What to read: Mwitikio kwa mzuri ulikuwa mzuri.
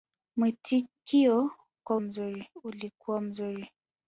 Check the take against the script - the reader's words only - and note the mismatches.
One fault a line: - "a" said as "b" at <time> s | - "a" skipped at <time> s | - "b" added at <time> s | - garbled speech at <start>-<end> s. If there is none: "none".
none